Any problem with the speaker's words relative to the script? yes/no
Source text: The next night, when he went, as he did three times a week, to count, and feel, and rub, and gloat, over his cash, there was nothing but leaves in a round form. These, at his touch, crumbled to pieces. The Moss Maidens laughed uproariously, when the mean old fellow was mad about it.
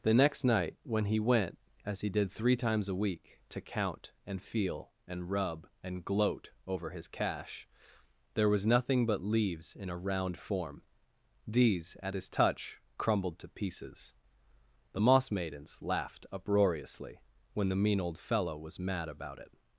no